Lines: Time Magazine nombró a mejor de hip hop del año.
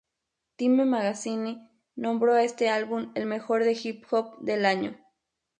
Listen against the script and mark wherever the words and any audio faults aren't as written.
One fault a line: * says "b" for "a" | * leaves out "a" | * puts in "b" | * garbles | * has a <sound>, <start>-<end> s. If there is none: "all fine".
* puts in "este álbum el"